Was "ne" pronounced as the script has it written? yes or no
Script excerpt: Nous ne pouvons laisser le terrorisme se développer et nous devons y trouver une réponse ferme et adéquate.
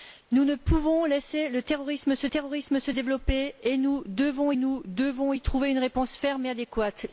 yes